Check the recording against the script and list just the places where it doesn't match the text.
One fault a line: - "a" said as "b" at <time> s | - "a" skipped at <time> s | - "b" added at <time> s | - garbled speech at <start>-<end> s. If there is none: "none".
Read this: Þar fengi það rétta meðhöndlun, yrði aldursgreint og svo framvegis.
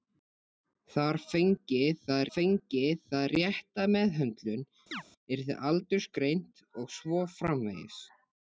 - "fengi það" added at 2.4 s